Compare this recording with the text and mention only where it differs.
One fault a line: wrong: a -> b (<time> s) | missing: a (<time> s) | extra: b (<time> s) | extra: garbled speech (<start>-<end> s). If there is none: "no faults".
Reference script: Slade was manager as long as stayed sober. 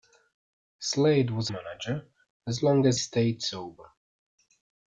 no faults